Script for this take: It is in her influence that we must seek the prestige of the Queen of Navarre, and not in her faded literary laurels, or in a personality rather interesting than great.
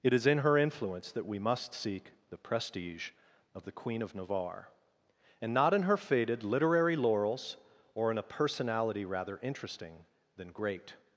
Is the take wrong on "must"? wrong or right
right